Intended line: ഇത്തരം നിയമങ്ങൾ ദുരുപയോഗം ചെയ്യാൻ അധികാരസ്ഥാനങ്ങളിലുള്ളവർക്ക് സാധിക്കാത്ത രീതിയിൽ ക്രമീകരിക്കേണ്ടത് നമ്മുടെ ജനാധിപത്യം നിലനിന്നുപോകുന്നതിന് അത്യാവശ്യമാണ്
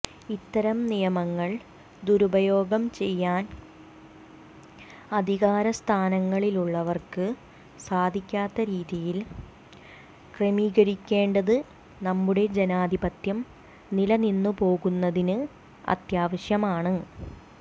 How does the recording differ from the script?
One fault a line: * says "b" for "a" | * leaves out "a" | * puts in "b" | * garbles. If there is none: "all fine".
all fine